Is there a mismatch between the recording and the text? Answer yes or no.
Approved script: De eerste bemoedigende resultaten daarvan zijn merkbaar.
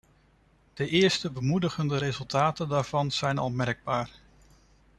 yes